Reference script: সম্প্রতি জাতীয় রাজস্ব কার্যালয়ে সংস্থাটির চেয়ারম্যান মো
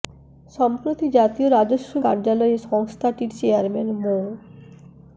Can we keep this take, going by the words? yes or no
yes